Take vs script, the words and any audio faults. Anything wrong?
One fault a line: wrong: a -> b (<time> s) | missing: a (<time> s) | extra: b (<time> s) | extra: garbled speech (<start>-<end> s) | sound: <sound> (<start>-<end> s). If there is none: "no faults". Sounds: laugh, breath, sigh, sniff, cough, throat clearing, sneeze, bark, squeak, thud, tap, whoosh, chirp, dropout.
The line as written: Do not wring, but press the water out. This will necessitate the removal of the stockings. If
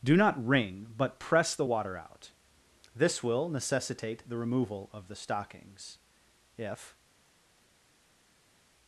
no faults